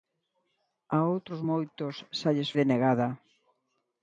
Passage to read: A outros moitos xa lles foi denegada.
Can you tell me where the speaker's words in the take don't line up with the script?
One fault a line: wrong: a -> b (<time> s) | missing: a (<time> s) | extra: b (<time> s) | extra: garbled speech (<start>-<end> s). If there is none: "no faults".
missing: foi (2.5 s)